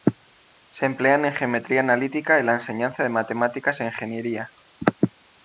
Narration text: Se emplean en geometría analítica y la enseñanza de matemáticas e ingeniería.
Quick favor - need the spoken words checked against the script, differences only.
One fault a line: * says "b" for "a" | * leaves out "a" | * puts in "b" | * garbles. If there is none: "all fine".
all fine